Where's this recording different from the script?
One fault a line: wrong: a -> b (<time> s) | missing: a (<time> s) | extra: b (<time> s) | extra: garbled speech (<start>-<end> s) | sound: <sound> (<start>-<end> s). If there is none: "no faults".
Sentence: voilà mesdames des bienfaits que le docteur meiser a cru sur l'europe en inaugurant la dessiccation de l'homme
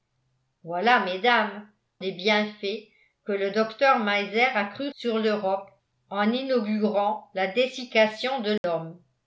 sound: dropout (8.6-8.6 s)